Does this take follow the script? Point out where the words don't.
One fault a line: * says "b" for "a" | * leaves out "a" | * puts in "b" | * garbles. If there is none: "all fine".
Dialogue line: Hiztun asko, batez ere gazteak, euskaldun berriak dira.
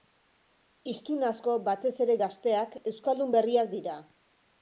all fine